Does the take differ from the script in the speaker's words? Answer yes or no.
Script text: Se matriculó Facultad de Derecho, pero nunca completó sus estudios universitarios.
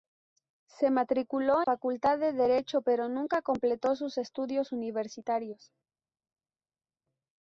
no